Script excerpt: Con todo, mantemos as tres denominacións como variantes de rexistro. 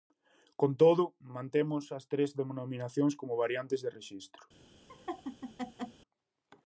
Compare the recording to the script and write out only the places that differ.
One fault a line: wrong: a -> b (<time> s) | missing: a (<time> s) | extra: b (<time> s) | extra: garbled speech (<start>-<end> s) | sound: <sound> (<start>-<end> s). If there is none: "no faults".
sound: laugh (4.9-6.0 s)